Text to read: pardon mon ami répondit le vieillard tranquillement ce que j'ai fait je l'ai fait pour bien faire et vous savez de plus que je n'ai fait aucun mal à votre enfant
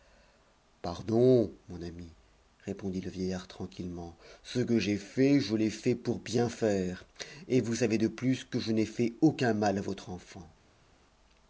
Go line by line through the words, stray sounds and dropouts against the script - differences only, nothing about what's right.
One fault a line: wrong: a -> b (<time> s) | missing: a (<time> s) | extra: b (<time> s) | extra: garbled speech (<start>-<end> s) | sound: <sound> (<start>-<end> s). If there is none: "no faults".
no faults